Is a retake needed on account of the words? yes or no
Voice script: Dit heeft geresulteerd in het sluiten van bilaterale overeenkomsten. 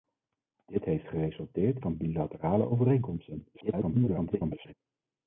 yes